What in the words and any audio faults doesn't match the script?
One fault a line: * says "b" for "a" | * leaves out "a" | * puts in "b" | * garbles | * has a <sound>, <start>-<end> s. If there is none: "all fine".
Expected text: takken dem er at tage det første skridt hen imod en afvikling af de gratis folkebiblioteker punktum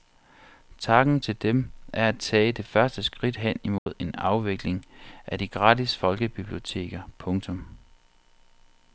* puts in "til"
* has a dropout, 3.8-3.9 s